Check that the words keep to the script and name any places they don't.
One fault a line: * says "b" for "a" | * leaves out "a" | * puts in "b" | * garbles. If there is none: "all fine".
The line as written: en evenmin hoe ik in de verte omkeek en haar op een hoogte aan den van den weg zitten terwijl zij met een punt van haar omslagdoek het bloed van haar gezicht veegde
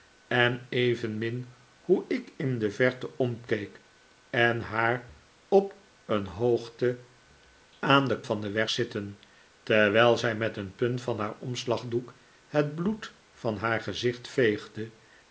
all fine